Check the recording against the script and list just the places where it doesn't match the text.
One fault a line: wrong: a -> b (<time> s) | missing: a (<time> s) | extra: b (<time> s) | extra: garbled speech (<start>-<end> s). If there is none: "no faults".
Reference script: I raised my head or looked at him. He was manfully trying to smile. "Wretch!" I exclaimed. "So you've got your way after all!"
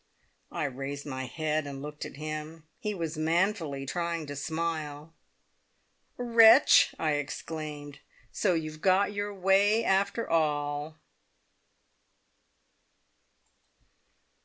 wrong: or -> and (1.7 s)